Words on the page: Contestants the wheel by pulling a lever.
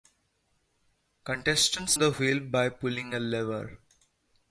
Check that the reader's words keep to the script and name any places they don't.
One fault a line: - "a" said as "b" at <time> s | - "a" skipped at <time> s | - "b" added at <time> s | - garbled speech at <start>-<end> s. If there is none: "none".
none